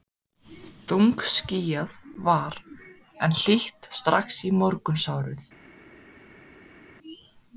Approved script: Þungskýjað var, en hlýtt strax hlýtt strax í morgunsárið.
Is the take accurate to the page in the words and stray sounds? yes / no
no